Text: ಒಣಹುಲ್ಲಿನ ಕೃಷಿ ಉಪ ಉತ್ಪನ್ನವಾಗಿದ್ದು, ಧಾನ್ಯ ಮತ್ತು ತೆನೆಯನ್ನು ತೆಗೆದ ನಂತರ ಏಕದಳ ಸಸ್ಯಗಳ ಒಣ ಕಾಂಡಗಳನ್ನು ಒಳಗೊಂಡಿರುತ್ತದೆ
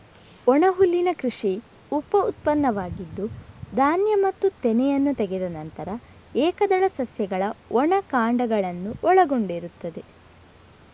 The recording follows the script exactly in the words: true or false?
true